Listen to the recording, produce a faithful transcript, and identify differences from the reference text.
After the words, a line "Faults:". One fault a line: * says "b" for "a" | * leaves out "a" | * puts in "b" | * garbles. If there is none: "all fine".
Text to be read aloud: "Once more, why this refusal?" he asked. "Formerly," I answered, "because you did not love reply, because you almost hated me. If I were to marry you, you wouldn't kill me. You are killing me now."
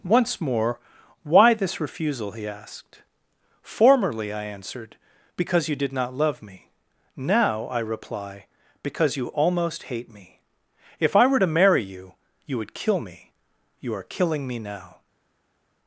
"Once more, why this refusal?" he asked. "Formerly," I answered, "because you did not love me; now, I reply, because you almost hate me. If I were to marry you, you would kill me. You are killing me now."
Faults:
* puts in "me now I"
* says "hate" for "hated"
* says "would" for "wouldn't"